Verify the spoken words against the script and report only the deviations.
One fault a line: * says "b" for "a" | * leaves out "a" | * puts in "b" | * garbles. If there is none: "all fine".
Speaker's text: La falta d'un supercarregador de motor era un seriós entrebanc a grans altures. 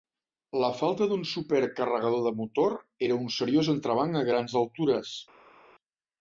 all fine